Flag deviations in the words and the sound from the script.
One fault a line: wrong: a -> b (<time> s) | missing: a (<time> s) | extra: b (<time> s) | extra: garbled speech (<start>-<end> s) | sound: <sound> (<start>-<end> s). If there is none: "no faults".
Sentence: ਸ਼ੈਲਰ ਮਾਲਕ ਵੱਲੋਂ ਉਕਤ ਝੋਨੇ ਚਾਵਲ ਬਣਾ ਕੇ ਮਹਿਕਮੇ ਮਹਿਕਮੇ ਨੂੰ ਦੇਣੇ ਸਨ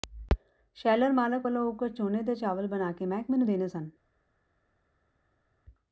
extra: ਦੇ (2.2 s)
missing: ਮਹਿਕਮੇ (3.4 s)